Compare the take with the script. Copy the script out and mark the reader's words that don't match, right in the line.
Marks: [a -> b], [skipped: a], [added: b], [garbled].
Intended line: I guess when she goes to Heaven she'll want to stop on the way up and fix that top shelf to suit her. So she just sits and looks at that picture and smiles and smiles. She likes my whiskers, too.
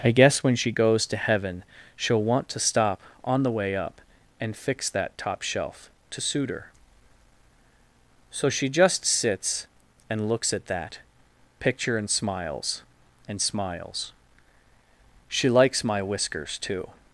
I guess when she goes to Heaven she'll want to stop on the way up and fix that top shelf to suit her. So she just sits and looks at that picture and smiles and smiles. She likes my whiskers, too.